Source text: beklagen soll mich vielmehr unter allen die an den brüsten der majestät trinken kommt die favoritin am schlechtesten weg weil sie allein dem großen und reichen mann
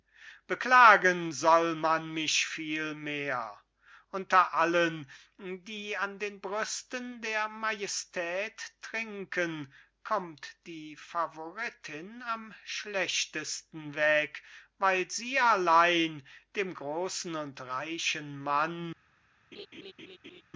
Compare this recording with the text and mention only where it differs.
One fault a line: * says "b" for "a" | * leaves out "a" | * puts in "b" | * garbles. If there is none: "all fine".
* puts in "man"